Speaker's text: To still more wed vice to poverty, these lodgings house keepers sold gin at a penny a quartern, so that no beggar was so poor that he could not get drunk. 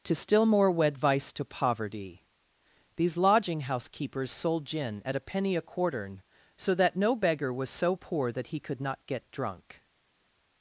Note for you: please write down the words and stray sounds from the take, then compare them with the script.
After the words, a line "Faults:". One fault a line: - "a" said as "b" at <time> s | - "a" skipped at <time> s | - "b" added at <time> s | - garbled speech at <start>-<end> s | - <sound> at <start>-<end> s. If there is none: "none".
To still more wed vice to poverty, these lodging house keepers sold gin at a penny a quartern, so that no beggar was so poor that he could not get drunk.
Faults:
- "lodgings" said as "lodging" at 3.2 s